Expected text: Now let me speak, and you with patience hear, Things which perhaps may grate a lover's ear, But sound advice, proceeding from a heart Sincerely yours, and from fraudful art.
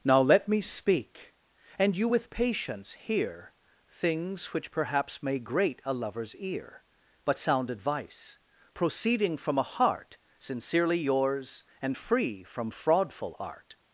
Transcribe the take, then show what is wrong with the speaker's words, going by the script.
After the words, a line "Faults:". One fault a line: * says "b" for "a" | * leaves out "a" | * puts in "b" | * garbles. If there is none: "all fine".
Now let me speak, and you with patience hear, Things which perhaps may grate a lover's ear, But sound advice, proceeding from a heart Sincerely yours, and free from fraudful art.
Faults:
* puts in "free"